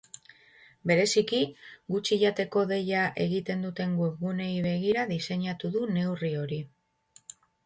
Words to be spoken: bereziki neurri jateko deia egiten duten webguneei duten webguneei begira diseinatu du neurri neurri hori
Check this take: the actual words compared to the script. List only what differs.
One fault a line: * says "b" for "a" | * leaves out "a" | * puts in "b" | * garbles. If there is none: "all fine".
* says "gutxi" for "neurri"
* leaves out "duten webguneei"
* leaves out "neurri"